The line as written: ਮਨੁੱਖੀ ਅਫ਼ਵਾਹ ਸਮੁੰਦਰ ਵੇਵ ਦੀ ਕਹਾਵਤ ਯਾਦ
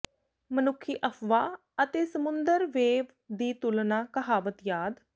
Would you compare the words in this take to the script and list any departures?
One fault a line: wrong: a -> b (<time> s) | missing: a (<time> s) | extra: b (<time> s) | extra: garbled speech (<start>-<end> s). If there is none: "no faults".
extra: ਅਤੇ (1.8 s)
extra: ਤੁਲਨਾ (3.5 s)